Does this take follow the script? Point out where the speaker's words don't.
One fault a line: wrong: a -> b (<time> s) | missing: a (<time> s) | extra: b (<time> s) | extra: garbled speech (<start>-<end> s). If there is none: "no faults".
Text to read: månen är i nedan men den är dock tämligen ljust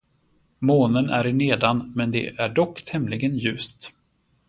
wrong: den -> det (2.1 s)